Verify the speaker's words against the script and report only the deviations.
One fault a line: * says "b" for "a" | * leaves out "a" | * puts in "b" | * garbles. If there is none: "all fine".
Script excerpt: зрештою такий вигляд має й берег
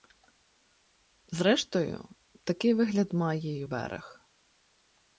all fine